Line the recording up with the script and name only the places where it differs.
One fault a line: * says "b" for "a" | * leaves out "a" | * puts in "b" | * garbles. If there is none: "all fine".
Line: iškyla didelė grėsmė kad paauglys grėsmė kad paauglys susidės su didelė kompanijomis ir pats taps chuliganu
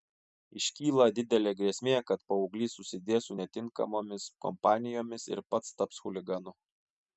* leaves out "grėsmė kad paauglys"
* says "netinkamomis" for "didelė"